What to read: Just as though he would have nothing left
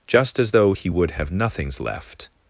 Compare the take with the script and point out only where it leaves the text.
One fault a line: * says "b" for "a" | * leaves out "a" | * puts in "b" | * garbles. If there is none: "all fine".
* says "nothings" for "nothing"